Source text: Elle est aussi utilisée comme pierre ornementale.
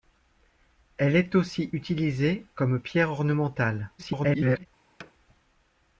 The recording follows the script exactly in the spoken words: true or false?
false